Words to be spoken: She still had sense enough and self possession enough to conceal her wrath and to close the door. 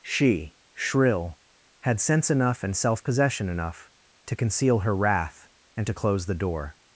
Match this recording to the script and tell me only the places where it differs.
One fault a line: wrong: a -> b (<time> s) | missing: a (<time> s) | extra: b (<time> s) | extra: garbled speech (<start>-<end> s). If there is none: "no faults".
wrong: still -> shrill (0.7 s)